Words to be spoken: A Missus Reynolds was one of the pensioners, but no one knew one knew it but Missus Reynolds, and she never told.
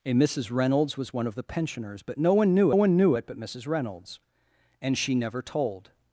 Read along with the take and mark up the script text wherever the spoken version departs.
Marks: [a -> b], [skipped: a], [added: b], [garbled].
A Missus Reynolds was one of the pensioners, but no one knew one knew it but Missus Reynolds, and she never told.